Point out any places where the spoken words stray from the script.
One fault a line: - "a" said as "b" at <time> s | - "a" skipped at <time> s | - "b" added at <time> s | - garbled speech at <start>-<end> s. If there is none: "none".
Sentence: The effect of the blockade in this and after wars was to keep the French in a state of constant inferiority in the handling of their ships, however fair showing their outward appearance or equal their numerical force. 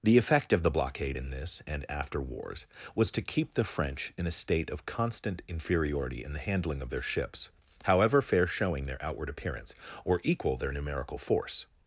none